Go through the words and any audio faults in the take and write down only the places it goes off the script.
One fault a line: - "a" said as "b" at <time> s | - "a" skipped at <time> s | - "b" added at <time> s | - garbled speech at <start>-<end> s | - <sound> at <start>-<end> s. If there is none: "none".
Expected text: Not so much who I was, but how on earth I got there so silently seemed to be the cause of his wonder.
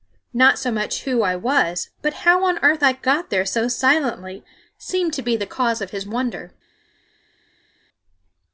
none